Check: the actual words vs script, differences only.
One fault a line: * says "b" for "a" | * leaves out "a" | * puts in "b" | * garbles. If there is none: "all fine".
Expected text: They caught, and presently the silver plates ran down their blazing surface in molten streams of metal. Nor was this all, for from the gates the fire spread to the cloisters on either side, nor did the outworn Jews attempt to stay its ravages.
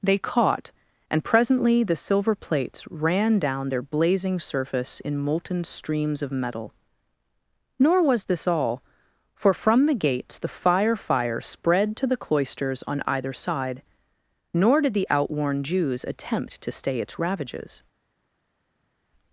* puts in "fire"